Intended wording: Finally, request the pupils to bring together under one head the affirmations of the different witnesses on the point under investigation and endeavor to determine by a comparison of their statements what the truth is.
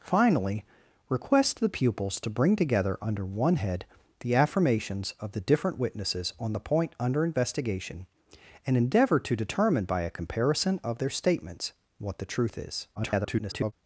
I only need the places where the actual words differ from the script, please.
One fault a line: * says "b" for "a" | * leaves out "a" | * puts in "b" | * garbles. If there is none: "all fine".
* garbles